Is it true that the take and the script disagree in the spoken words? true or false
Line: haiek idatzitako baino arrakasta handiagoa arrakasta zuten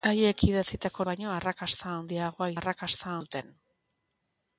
false